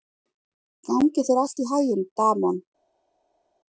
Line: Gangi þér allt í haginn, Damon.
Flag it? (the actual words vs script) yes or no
no